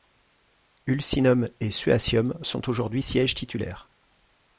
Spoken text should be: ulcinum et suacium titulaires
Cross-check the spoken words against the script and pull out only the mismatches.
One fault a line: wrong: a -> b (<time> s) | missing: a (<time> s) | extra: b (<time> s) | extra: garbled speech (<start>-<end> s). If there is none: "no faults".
extra: sont aujourd'hui sièges (2.4 s)